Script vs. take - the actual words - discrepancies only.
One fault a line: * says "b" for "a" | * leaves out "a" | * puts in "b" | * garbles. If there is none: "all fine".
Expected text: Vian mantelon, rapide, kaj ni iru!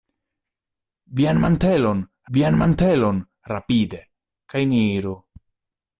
* puts in "vian mantelon"